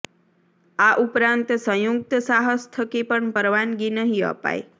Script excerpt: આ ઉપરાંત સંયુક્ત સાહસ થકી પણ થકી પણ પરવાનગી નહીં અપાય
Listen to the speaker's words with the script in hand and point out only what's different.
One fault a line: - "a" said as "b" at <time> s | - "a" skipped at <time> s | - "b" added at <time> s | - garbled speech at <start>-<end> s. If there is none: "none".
- "થકી પણ" skipped at 3.3 s